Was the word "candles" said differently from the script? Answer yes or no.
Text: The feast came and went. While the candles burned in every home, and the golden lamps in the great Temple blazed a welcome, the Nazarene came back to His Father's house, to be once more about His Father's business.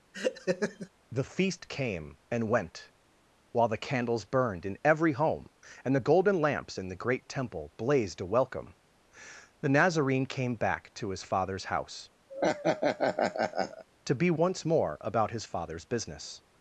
no